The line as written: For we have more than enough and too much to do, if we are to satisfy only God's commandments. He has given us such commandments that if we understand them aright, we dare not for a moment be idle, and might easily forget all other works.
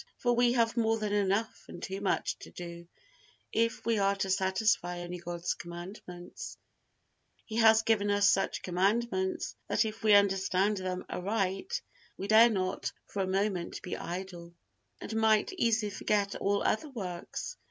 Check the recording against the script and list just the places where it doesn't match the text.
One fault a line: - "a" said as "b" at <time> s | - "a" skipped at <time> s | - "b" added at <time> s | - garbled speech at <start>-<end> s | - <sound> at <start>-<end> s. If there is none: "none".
none